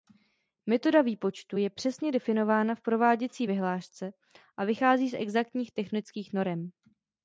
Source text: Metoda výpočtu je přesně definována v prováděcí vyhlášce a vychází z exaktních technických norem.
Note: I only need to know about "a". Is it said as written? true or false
true